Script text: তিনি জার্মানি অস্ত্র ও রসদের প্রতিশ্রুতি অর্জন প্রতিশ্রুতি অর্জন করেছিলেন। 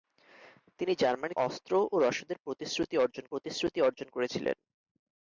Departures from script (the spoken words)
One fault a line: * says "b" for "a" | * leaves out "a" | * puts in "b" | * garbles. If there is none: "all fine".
all fine